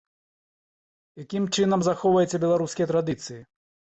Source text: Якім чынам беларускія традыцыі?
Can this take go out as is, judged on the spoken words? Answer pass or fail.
fail